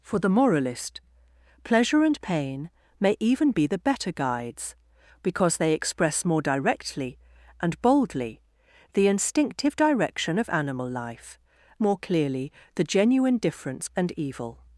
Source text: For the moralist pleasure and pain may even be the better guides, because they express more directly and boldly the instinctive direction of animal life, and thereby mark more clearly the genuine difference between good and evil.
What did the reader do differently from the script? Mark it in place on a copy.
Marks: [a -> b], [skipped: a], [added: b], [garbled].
For the moralist pleasure and pain may even be the better guides, because they express more directly and boldly the instinctive direction of animal life, [skipped: and thereby mark] more clearly the genuine difference [skipped: between good] and evil.